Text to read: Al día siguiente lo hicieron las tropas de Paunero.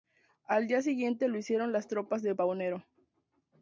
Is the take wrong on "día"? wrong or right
right